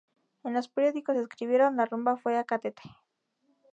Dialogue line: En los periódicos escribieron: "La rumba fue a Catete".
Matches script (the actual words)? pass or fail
pass